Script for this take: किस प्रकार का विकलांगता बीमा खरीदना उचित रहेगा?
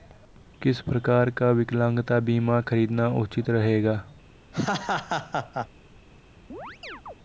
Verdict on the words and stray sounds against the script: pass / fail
fail